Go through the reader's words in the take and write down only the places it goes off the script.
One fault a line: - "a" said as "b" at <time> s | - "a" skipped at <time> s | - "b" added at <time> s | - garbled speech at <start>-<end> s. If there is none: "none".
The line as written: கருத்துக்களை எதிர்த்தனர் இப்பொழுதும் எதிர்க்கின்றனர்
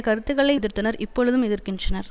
none